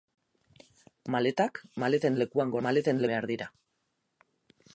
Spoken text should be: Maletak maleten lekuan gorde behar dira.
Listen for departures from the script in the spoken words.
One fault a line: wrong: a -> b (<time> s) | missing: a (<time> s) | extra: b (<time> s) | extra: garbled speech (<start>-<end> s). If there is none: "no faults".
wrong: gorde -> maleten (2.7 s)